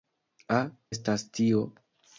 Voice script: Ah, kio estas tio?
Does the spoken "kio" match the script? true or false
false